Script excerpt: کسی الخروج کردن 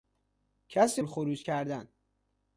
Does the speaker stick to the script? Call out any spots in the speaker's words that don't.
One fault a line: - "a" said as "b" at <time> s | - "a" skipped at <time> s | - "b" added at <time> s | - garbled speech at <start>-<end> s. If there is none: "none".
none